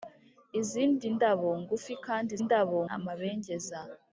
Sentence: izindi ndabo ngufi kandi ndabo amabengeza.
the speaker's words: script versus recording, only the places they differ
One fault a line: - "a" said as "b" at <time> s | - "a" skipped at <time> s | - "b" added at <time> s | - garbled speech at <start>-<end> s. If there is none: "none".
none